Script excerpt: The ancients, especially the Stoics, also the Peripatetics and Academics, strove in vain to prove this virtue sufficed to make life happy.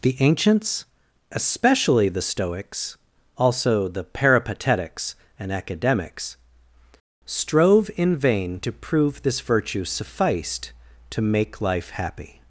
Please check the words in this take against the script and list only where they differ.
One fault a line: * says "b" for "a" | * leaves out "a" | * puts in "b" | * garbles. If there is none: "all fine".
all fine